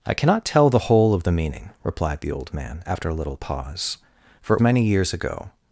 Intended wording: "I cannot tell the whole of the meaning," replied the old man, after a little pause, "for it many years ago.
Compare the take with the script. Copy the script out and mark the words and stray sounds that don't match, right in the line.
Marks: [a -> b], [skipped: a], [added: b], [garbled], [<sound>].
"I cannot tell the whole of the meaning," replied the old man, after a little pause, "for it many years ago.